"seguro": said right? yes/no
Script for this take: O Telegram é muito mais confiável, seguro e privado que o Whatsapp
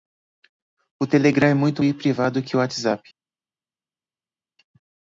no